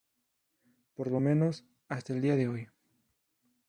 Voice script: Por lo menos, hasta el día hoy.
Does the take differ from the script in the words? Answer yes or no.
yes